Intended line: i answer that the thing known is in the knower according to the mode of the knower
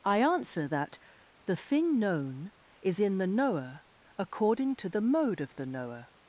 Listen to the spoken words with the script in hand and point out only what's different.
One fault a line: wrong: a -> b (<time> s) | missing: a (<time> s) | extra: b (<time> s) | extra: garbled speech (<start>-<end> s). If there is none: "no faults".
no faults